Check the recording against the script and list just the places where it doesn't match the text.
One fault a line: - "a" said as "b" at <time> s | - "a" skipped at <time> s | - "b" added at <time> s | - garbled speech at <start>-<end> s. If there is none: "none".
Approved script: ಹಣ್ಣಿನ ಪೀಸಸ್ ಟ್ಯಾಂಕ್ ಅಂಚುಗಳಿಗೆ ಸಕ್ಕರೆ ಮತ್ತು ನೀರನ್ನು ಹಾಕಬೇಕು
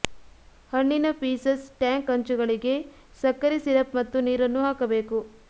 - "ಸಿರಪ್" added at 3.6 s